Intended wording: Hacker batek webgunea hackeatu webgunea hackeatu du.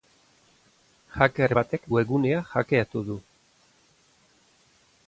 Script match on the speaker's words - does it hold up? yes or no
no